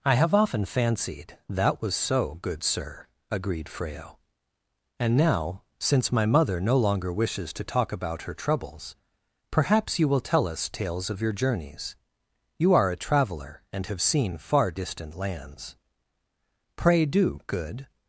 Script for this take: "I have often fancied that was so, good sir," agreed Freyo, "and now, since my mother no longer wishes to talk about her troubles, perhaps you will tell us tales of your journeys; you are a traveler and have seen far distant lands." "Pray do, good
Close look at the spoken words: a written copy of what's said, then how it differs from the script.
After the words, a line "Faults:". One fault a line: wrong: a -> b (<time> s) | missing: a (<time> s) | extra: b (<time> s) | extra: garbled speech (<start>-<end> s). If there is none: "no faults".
"I have often fancied that was so, good sir," agreed Freyo, "and now, since my mother no longer wishes to talk about her troubles, perhaps you will tell us tales of your journeys; you are a traveler and have seen far distant lands." "Pray do, good
Faults:
no faults